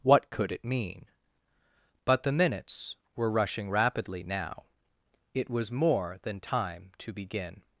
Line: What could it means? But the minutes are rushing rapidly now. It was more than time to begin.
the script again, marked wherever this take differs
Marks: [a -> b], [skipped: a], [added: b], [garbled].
What could it [means? -> mean] But the minutes [are -> were] rushing rapidly now. It was more than time to begin.